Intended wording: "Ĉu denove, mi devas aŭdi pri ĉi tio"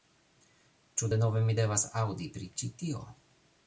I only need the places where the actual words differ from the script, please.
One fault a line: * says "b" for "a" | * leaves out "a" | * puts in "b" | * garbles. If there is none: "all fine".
all fine